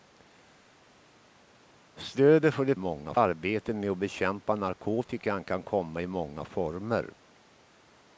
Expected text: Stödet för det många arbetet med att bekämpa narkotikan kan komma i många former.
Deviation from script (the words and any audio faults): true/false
false